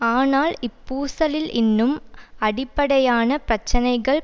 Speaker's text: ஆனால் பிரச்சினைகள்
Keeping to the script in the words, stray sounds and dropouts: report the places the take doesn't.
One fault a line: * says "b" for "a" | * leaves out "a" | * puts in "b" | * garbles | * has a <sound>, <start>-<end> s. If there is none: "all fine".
* puts in "இப்பூசலில் இன்னும் அடிப்படையான"